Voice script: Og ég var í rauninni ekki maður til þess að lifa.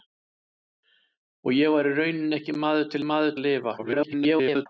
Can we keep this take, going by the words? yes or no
no